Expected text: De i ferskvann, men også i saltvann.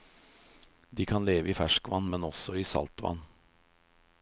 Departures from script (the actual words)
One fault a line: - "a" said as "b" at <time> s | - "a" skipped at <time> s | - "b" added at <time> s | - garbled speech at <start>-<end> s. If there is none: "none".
- "kan leve" added at 1.1 s